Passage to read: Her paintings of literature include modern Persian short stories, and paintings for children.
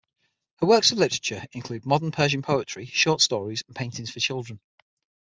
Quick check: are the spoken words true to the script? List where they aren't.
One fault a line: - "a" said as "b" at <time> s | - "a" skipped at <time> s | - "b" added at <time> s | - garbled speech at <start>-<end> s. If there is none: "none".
- "paintings" said as "works" at 0.7 s
- "poetry" added at 2.4 s